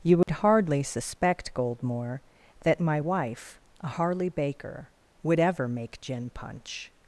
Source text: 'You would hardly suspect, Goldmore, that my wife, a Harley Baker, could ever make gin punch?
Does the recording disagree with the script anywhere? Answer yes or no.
yes